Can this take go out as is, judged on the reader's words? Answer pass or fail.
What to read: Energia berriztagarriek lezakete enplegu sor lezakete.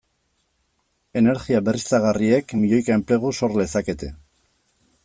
fail